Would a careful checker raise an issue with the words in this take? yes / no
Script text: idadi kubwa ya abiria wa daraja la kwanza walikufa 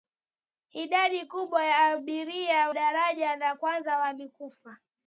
yes